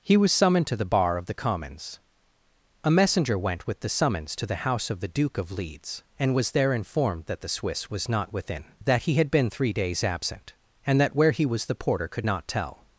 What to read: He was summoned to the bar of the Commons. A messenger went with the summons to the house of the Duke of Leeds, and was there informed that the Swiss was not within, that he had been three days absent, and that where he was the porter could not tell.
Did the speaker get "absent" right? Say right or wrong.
right